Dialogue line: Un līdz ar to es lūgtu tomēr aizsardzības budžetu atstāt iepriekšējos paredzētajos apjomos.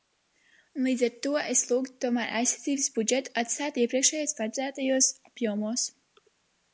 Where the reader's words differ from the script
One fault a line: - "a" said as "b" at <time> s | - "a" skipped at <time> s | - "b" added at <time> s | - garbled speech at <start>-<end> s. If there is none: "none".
none